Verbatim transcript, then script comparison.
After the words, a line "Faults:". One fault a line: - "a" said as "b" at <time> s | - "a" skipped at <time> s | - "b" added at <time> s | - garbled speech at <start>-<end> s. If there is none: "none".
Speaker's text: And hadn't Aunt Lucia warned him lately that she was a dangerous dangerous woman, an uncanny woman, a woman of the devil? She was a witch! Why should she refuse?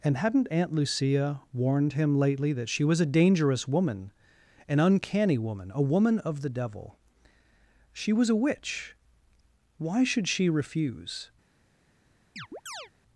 And hadn't Aunt Lucia warned him lately that she was a dangerous woman, an uncanny woman, a woman of the devil? She was a witch! Why should she refuse?
Faults:
- "dangerous" skipped at 3.7 s